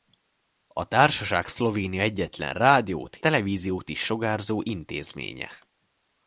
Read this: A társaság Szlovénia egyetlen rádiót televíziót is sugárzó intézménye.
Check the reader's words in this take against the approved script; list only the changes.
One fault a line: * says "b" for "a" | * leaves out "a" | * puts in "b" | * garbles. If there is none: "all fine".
all fine